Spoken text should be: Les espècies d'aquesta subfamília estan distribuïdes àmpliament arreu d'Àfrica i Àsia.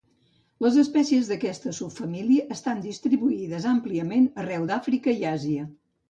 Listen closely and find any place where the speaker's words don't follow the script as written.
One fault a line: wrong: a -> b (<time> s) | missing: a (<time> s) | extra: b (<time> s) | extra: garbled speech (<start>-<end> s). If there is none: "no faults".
no faults